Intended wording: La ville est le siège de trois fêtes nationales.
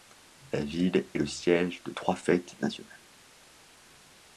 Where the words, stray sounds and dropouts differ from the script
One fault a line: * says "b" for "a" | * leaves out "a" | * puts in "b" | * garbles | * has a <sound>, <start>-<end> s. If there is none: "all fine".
all fine